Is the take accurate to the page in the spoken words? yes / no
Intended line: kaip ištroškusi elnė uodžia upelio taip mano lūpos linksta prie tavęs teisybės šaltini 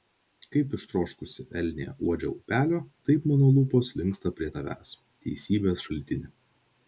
yes